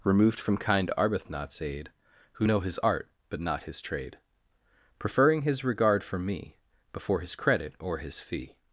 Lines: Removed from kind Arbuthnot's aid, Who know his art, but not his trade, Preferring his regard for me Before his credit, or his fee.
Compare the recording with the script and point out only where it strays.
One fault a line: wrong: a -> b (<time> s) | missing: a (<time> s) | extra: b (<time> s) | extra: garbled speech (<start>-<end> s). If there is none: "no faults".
no faults